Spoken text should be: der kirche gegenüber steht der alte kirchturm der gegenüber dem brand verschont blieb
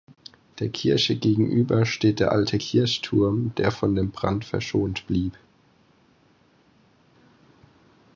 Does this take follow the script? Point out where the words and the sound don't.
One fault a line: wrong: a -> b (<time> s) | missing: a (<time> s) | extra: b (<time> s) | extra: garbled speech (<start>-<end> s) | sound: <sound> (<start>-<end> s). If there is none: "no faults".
wrong: gegenüber -> von (3.7 s)